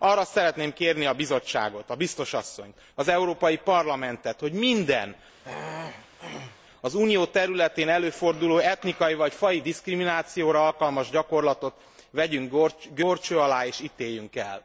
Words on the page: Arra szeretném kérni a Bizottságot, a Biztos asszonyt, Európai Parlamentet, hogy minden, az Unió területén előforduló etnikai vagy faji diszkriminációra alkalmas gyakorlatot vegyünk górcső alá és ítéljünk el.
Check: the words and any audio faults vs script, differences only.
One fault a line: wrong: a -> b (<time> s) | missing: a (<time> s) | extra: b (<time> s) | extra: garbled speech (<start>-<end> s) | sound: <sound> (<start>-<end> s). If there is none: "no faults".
extra: az (2.9 s)
sound: throat clearing (5.4-6.6 s)